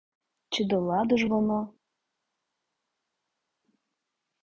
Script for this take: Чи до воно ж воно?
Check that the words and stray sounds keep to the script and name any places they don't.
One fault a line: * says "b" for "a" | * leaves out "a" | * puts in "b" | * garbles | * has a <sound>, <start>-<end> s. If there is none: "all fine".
* says "ладу" for "воно"